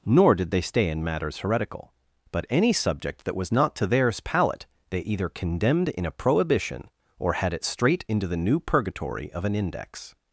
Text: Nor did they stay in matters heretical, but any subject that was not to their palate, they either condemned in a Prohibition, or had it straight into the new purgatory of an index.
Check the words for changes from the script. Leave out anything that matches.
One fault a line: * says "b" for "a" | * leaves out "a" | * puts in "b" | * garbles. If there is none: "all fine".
* says "theirs" for "their"